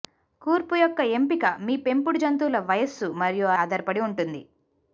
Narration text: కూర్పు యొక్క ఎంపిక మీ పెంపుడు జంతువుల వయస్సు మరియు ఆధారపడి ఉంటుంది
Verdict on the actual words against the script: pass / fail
pass